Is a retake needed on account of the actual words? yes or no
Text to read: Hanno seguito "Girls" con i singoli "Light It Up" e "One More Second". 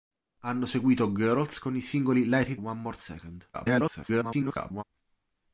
yes